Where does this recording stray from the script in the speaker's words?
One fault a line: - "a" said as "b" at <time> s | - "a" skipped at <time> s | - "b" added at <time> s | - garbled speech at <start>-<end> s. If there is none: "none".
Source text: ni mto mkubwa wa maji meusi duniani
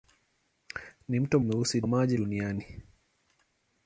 - "mkubwa" said as "meusi" at 1.4 s
- "meusi" skipped at 2.2 s